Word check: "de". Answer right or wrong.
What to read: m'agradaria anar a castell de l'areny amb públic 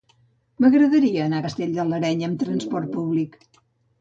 right